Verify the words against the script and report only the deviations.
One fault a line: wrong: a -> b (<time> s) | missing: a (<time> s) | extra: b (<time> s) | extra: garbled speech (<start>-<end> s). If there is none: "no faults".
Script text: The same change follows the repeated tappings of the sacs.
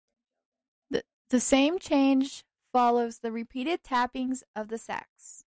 no faults